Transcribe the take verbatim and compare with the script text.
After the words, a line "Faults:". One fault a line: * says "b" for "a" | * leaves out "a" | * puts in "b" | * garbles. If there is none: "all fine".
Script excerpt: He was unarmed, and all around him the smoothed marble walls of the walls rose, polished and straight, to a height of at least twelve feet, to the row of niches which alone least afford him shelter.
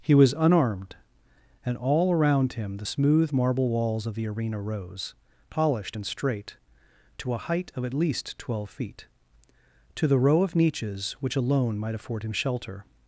He was unarmed, and all around him the smooth marble walls of the arena rose, polished and straight, to a height of at least twelve feet, to the row of niches which alone might afford him shelter.
Faults:
* says "smooth" for "smoothed"
* says "arena" for "walls"
* says "might" for "least"